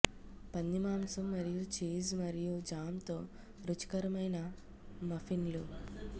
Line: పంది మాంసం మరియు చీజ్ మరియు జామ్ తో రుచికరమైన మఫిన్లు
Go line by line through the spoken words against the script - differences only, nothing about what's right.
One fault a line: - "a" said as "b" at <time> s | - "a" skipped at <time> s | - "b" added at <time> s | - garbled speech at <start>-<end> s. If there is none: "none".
none